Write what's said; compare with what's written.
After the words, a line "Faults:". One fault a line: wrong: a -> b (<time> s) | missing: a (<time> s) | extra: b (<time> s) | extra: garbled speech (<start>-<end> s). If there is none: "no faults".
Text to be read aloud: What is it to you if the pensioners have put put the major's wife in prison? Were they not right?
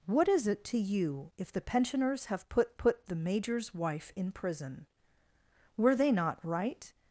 What is it to you if the pensioners have put put the major's wife in prison? Were they not right?
Faults:
no faults